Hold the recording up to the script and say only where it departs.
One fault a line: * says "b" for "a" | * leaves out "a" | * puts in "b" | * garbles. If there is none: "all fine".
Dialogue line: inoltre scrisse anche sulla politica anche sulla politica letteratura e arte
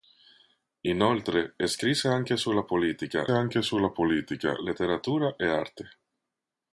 all fine